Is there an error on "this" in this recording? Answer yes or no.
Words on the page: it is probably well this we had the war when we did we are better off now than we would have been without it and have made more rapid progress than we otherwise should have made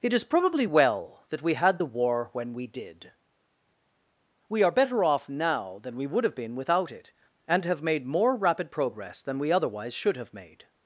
yes